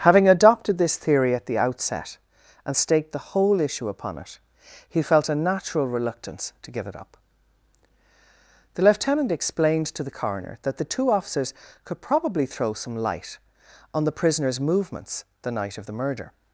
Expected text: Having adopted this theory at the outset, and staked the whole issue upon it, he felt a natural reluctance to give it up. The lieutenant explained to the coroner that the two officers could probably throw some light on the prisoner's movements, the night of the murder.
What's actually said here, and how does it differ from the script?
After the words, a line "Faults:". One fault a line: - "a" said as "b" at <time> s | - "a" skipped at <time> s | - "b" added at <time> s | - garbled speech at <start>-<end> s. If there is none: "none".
Having adopted this theory at the outset, and staked the whole issue upon it, he felt a natural reluctance to give it up. The lieutenant explained to the coroner that the two officers could probably throw some light on the prisoner's movements, the night of the murder.
Faults:
none